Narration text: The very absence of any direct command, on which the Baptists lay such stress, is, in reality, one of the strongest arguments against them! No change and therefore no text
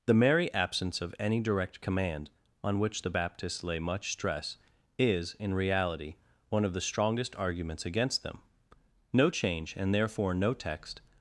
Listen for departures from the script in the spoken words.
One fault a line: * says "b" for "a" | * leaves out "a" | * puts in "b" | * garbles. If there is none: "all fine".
* says "merry" for "very"
* says "much" for "such"